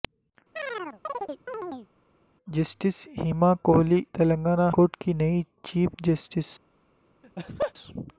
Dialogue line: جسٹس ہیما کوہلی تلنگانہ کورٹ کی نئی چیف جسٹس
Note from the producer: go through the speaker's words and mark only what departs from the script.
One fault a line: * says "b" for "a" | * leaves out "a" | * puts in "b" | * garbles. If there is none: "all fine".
all fine